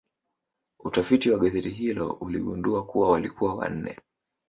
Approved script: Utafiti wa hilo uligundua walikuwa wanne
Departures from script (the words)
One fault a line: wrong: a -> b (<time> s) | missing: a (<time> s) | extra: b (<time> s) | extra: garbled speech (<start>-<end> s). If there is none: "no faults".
extra: gazeti (1.4 s)
extra: kuwa (2.9 s)